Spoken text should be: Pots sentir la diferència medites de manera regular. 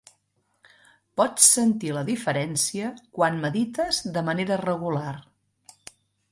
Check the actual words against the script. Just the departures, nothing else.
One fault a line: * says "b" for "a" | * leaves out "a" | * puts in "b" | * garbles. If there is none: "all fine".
* puts in "quan"